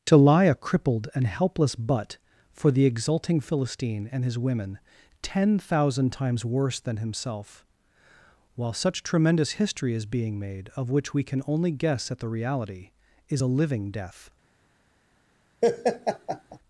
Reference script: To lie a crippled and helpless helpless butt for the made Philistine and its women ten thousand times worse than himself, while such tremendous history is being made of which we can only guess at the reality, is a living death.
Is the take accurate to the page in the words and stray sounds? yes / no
no